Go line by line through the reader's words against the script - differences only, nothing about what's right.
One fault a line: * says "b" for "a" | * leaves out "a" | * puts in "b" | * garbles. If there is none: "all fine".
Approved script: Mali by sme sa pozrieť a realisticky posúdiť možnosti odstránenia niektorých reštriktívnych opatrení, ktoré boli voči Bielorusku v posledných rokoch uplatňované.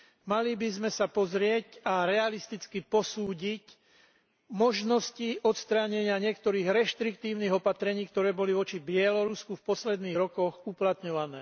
all fine